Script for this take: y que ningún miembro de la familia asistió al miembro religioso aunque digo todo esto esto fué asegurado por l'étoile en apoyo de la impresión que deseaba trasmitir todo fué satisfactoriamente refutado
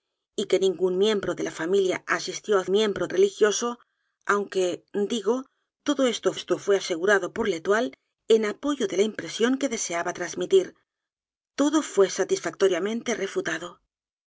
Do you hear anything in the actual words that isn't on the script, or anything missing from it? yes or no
no